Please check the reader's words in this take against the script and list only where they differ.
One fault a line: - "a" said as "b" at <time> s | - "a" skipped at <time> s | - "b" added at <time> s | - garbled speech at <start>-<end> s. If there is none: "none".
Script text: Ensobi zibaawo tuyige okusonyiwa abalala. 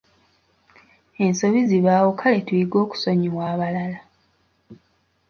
- "kale" added at 2.2 s